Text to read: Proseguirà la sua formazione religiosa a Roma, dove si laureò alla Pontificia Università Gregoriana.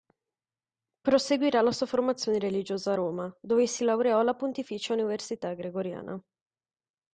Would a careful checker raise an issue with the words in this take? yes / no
no